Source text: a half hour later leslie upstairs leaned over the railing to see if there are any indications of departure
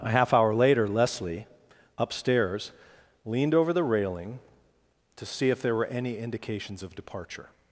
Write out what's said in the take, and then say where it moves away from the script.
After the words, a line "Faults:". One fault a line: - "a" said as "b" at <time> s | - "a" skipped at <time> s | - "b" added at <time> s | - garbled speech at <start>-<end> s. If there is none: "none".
a half hour later leslie upstairs leaned over the railing to see if there were any indications of departure
Faults:
- "are" said as "were" at 5.7 s